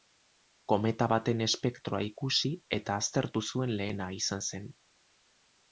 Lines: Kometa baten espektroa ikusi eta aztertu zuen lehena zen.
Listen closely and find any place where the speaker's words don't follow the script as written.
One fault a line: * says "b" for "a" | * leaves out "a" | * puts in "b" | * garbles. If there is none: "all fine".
* puts in "izan"